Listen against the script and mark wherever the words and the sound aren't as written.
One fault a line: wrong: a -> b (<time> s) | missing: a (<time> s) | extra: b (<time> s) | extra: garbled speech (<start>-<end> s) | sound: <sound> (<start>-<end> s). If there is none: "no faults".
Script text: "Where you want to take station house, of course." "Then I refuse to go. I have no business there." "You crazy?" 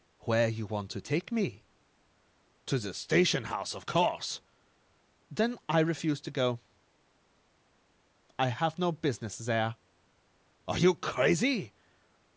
extra: me To the (1.3 s)
extra: Are (10.7 s)